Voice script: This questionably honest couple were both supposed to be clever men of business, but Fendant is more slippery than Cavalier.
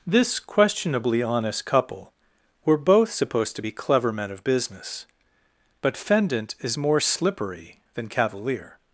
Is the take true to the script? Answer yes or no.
yes